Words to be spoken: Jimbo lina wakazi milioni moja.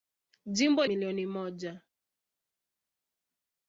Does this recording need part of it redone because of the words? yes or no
yes